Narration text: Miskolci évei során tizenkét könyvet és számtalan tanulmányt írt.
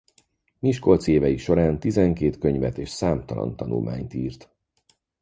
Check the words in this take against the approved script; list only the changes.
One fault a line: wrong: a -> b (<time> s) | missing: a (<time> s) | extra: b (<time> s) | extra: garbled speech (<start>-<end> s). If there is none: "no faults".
no faults